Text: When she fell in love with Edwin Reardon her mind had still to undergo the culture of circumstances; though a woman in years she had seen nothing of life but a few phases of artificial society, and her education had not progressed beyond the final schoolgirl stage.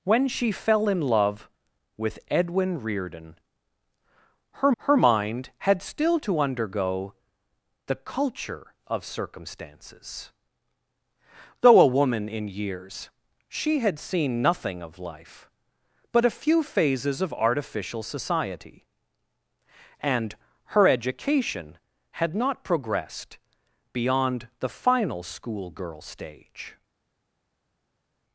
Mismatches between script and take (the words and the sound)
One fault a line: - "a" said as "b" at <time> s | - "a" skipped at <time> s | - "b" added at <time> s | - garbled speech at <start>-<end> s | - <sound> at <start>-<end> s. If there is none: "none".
- "her" added at 4.8 s